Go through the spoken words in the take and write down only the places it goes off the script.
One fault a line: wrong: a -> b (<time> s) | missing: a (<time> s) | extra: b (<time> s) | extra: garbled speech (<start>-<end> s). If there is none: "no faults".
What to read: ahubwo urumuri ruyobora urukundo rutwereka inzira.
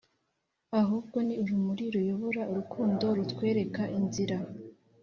extra: ni (1.3 s)